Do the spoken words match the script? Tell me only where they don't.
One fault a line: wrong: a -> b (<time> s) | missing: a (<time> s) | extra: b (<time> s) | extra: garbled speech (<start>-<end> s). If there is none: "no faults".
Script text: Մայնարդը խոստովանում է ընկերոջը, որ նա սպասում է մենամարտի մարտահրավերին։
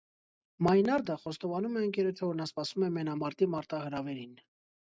no faults